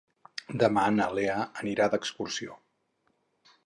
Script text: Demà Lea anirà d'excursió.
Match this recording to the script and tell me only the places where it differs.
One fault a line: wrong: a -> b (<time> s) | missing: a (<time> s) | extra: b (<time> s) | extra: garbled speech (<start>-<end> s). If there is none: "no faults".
extra: na (0.9 s)